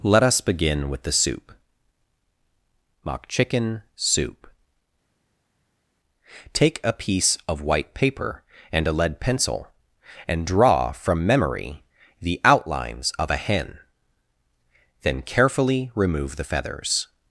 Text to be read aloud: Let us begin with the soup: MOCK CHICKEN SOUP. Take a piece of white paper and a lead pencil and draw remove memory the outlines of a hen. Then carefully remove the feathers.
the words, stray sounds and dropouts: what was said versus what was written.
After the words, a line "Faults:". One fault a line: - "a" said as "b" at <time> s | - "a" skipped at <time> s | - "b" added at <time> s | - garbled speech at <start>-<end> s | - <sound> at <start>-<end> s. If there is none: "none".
Let us begin with the soup: MOCK CHICKEN SOUP. Take a piece of white paper and a lead pencil and draw from memory the outlines of a hen. Then carefully remove the feathers.
Faults:
- "remove" said as "from" at 10.9 s